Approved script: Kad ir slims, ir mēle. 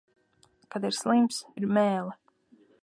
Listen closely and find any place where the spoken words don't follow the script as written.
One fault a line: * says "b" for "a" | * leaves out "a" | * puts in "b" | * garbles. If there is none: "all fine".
all fine